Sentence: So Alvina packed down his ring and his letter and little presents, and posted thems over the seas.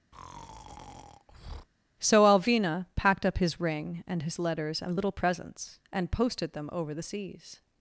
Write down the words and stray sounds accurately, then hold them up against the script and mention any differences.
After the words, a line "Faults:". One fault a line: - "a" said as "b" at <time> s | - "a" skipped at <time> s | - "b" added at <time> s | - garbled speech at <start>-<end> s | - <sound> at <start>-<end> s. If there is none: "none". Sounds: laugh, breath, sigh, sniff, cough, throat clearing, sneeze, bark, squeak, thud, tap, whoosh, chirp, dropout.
So Alvina packed up his ring and his letters and little presents, and posted them over the seas.
Faults:
- breath at 0.1-1.7 s
- "down" said as "up" at 3.2 s
- "letter" said as "letters" at 4.4 s
- "thems" said as "them" at 6.5 s